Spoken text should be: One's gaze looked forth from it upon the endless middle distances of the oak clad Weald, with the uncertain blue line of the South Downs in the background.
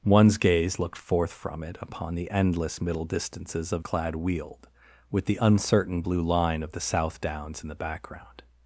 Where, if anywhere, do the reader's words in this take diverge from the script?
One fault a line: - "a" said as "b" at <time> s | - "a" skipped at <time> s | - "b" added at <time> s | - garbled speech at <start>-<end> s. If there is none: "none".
- "the oak" skipped at 3.9 s